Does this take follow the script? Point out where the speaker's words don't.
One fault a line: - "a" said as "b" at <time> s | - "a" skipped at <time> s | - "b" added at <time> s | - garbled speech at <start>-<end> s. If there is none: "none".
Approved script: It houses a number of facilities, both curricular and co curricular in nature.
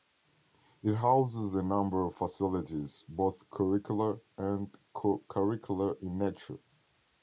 none